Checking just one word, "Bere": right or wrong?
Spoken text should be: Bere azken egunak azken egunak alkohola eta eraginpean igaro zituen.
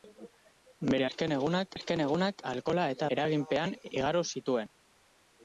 right